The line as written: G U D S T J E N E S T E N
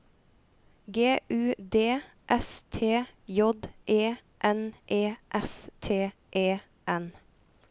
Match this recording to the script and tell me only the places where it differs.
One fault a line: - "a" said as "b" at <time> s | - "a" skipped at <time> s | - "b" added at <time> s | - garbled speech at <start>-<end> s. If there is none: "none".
none